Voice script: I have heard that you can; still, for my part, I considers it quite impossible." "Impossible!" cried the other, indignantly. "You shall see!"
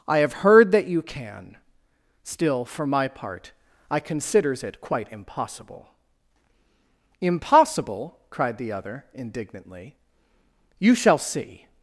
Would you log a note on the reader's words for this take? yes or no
no